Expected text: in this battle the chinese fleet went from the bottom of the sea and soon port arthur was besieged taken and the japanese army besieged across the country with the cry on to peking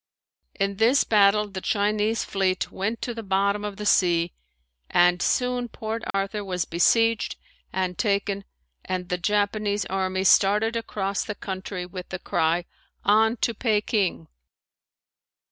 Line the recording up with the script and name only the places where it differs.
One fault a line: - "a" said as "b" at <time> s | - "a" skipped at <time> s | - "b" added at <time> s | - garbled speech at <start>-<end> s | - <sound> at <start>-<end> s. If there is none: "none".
- "from" said as "to" at 3.0 s
- dropout at 6.1-6.1 s
- "and" added at 7.7 s
- "besieged" said as "started" at 10.2 s